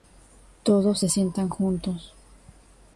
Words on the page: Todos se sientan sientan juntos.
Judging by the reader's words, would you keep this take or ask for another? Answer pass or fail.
fail